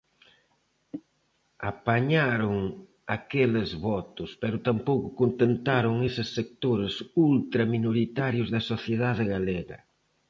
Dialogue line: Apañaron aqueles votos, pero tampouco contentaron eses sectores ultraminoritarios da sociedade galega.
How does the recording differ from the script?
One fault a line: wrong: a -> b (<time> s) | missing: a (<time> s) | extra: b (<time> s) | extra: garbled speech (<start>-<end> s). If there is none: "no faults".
no faults